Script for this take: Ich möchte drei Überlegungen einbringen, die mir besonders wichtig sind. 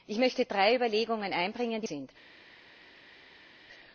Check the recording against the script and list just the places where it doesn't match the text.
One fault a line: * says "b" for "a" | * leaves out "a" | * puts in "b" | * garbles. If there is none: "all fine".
* leaves out "mir besonders wichtig"